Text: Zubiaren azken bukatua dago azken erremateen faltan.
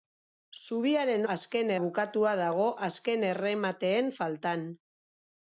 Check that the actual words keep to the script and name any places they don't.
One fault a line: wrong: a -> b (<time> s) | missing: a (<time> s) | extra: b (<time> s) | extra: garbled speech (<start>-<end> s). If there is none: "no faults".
no faults